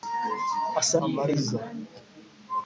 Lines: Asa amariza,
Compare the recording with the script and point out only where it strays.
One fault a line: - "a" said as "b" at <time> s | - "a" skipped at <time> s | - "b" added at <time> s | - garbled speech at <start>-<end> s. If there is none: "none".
none